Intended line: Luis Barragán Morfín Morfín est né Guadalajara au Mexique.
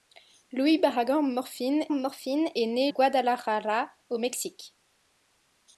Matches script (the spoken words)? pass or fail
pass